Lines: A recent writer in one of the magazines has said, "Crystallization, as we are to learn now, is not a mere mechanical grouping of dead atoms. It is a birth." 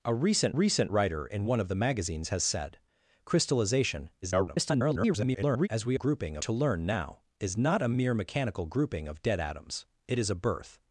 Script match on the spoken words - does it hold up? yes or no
no